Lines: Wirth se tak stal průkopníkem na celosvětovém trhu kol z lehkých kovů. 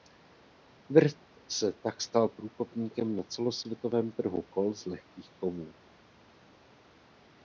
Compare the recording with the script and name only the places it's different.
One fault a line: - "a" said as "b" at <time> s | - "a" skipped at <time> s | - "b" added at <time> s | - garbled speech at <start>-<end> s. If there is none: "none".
none